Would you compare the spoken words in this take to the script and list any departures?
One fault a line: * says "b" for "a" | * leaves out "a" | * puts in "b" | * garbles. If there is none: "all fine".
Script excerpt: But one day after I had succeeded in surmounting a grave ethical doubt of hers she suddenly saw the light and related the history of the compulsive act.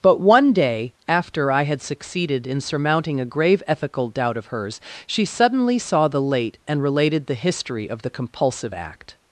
* says "late" for "light"